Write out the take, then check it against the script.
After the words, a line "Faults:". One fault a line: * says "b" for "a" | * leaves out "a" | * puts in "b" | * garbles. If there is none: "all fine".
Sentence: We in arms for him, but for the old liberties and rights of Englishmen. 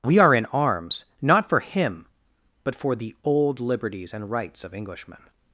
We are in arms not for him, but for the old liberties and rights of Englishmen.
Faults:
* puts in "are"
* puts in "not"